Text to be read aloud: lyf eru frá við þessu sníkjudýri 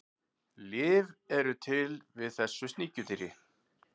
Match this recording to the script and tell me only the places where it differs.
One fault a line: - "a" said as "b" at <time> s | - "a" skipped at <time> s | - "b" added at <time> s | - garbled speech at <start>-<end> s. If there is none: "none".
- "frá" said as "til" at 1.7 s